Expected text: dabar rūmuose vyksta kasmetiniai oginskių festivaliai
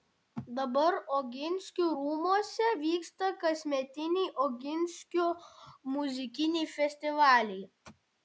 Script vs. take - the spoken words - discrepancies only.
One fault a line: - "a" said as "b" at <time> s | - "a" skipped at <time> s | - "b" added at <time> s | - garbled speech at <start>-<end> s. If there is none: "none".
- "oginskių" added at 1.2 s
- "muzikiniai" added at 5.9 s